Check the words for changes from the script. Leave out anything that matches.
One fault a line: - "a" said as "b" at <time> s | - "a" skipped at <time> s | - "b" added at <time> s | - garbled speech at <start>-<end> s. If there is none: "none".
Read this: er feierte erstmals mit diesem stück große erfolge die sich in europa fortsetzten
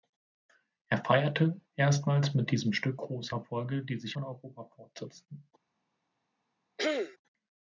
none